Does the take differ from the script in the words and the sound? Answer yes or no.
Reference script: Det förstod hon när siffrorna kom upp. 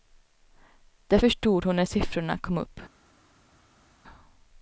no